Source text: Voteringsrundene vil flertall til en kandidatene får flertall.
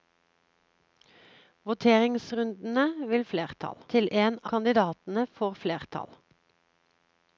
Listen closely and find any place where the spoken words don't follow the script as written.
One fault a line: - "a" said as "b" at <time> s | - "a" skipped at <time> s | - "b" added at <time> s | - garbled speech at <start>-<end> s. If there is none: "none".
none